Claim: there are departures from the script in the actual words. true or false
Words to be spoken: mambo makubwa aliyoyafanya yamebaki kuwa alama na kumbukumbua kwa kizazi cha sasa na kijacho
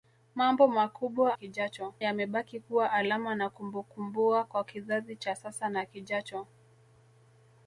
true